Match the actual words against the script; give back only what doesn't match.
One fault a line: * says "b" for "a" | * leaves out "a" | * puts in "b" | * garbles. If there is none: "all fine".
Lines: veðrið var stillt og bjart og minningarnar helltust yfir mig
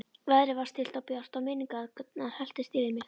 all fine